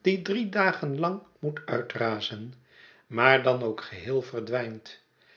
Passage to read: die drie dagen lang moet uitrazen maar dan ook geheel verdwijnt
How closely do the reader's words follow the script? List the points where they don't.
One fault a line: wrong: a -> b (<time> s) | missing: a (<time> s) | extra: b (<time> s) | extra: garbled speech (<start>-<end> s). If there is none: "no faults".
no faults